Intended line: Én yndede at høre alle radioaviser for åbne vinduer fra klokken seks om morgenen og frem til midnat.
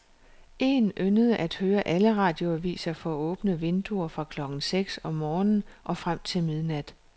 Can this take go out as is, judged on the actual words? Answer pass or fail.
pass